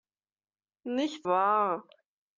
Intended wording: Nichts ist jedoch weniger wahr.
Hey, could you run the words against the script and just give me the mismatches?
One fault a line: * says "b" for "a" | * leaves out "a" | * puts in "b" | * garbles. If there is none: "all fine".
* leaves out "ist jedoch weniger"